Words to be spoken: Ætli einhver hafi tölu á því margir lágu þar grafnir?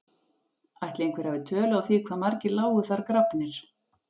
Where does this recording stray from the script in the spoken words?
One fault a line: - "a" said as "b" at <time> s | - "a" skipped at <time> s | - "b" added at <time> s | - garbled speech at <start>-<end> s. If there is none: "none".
- "hvað" added at 2.1 s